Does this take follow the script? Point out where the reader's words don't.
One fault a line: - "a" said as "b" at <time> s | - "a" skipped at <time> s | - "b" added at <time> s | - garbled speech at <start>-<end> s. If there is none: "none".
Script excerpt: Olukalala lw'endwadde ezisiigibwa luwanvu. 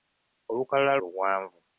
- "lw'endwadde ezisiigibwa" skipped at 0.9 s